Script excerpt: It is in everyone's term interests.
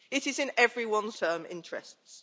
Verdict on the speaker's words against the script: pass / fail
pass